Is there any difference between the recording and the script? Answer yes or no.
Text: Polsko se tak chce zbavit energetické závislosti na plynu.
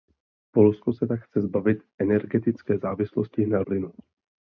no